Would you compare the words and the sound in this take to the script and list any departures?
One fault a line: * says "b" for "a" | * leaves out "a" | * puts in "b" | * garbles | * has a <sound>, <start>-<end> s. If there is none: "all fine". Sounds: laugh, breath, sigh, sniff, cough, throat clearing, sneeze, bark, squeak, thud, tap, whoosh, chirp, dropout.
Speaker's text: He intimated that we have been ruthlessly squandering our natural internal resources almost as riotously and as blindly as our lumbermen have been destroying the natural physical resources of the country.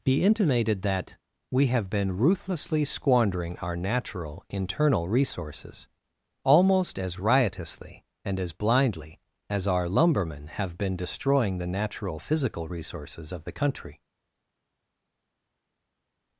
* says "Be" for "He"